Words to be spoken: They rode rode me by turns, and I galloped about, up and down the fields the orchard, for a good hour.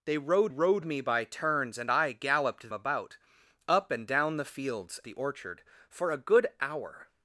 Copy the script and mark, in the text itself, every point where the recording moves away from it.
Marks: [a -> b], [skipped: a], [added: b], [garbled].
They rode rode me by turns, and I galloped about, up and down the fields the orchard, for a good hour.